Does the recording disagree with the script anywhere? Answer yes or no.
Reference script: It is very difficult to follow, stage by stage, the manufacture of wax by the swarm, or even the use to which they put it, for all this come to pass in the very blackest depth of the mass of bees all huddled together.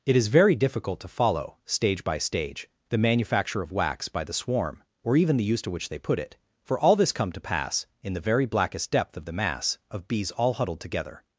no